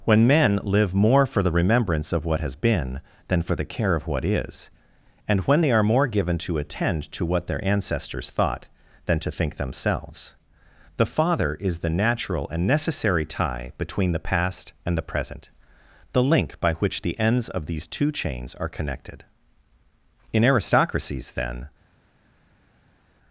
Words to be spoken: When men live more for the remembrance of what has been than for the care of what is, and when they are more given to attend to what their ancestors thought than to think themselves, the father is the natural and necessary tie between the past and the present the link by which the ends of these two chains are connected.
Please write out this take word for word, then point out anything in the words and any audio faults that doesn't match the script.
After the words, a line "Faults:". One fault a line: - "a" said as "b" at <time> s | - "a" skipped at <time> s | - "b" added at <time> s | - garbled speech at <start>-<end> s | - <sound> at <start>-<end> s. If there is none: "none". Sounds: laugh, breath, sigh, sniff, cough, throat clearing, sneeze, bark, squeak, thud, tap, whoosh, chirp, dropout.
When men live more for the remembrance of what has been than for the care of what is, and when they are more given to attend to what their ancestors thought than to think themselves, the father is the natural and necessary tie between the past and the present the link by which the ends of these two chains are connected. In aristocracies, then
Faults:
- "In aristocracies then" added at 20.3 s